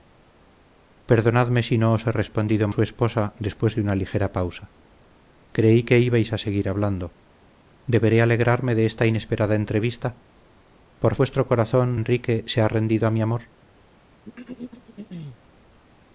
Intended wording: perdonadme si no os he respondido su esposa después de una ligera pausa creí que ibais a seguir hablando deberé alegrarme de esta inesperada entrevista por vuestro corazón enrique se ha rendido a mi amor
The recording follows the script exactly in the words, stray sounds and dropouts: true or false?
false